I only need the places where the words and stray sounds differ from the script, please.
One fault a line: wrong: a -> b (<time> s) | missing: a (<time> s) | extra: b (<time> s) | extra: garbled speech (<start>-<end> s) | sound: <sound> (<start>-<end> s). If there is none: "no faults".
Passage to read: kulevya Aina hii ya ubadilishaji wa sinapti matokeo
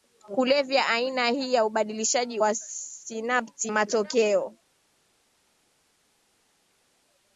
no faults